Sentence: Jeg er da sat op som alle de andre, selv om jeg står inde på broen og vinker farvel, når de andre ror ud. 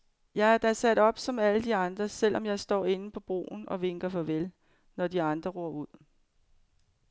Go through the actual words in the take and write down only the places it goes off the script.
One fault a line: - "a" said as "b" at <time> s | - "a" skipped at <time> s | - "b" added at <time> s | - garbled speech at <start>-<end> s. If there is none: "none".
none